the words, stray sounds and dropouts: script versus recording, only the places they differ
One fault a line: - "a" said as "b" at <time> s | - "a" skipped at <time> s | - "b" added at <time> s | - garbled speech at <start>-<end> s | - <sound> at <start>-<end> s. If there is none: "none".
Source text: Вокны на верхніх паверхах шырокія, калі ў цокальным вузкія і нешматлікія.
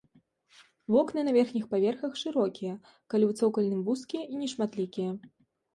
none